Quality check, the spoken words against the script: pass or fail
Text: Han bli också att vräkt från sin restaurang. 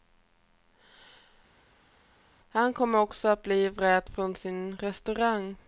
fail